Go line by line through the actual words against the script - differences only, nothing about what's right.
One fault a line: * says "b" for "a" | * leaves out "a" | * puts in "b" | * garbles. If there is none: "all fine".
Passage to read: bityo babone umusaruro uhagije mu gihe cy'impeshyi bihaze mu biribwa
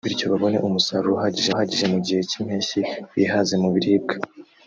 * puts in "uhagije"